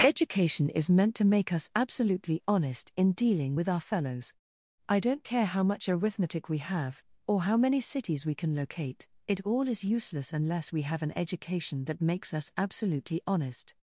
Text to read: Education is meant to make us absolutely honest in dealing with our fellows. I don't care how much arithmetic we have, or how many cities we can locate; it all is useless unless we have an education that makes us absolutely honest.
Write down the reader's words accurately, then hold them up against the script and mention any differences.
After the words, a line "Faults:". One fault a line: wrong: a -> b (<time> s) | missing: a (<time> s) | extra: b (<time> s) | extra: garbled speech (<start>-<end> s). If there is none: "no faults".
Education is meant to make us absolutely honest in dealing with our fellows. I don't care how much arithmetic we have, or how many cities we can locate; it all is useless unless we have an education that makes us absolutely honest.
Faults:
no faults